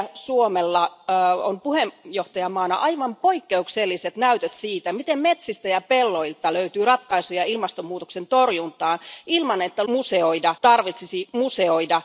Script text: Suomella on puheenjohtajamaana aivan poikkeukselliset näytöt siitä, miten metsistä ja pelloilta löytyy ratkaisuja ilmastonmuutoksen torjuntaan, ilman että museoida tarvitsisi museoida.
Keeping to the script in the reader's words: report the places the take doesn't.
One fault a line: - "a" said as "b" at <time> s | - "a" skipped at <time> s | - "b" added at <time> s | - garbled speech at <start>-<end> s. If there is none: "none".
none